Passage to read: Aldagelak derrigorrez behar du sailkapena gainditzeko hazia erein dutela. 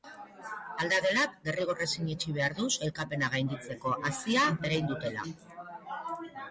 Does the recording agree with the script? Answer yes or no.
no